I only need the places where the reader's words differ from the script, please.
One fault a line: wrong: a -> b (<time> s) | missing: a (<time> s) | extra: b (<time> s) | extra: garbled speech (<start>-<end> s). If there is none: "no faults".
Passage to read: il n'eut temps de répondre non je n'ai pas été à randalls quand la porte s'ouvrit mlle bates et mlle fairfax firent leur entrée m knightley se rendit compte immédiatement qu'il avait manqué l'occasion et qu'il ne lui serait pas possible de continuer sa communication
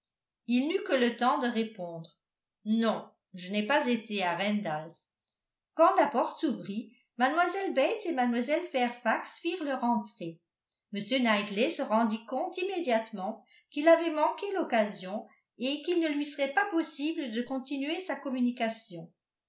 extra: que le (0.8 s)